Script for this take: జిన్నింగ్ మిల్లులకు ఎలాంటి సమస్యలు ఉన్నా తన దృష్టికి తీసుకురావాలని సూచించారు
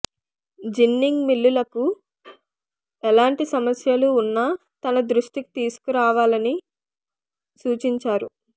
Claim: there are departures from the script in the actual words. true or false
false